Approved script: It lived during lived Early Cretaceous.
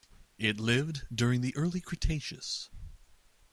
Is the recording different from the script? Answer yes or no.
yes